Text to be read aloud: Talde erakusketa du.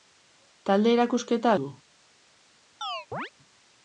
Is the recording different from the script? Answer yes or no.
no